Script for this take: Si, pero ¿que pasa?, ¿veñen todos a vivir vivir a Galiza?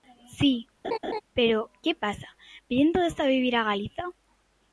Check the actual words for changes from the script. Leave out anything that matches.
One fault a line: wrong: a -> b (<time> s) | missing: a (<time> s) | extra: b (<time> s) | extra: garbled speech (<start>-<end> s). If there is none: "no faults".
missing: vivir (3.6 s)